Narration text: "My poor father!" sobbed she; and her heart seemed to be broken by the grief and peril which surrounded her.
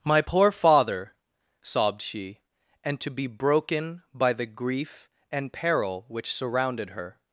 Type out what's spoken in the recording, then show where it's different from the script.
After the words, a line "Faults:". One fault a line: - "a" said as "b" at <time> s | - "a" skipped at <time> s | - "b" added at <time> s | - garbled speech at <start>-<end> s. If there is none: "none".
"My poor father!" sobbed she; and to be broken by the grief and peril which surrounded her.
Faults:
- "her heart seemed" skipped at 3.0 s